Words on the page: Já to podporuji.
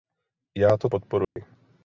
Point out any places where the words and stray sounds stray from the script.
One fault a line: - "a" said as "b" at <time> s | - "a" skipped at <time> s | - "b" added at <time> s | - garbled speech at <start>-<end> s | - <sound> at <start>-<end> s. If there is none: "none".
- dropout at 1.2-1.4 s